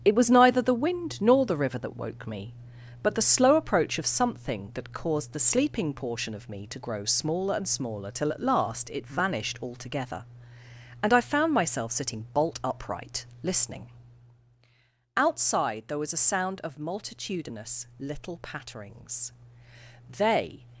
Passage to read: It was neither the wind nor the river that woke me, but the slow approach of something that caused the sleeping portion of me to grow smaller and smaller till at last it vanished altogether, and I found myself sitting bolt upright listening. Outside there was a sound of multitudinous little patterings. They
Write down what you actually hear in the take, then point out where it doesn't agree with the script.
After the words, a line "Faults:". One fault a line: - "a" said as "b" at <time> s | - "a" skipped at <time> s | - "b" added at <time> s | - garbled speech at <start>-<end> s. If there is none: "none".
It was neither the wind nor the river that woke me, but the slow approach of something that caused the sleeping portion of me to grow smaller and smaller till at last it vanished altogether, and I found myself sitting bolt upright listening. Outside there was a sound of multitudinous little patterings. They
Faults:
none